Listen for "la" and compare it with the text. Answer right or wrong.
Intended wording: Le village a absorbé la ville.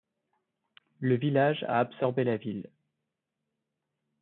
right